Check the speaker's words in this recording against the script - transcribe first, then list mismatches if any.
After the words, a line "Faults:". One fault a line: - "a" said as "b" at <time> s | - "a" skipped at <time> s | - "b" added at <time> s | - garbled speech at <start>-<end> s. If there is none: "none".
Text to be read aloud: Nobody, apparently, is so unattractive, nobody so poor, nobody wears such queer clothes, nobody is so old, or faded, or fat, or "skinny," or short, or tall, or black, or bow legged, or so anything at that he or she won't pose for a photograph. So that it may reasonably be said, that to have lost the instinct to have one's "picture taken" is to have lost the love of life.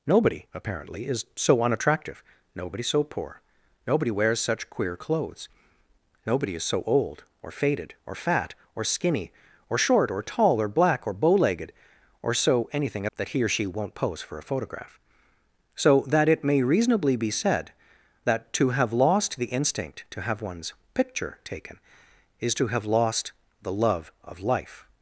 Nobody, apparently, is so unattractive, nobody so poor, nobody wears such queer clothes, nobody is so old, or faded, or fat, or "skinny," or short, or tall, or black, or bow legged, or so anything at that he or she won't pose for a photograph. So that it may reasonably be said, that to have lost the instinct to have one's "picture taken" is to have lost the love of life.
Faults:
none